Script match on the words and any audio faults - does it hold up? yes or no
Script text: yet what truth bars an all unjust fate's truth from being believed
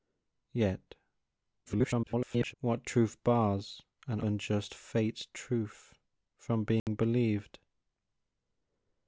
no